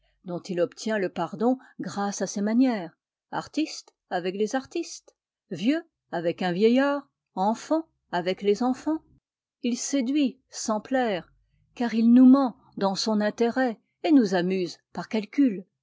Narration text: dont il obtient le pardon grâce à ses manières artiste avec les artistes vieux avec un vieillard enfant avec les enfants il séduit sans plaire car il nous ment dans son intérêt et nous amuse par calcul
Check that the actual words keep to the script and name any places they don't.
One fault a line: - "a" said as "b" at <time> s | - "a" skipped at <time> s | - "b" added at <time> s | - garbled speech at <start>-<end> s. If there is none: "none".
none